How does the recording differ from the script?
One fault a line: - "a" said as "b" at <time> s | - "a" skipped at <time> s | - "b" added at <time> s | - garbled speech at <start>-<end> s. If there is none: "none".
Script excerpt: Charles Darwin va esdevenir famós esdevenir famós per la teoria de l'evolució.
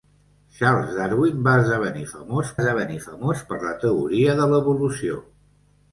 none